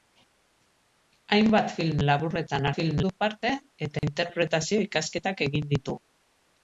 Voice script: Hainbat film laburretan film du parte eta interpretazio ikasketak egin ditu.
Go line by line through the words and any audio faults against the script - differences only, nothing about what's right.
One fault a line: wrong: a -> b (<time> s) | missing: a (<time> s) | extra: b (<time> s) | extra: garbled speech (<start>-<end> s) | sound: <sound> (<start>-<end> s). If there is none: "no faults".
sound: dropout (4.0-4.0 s)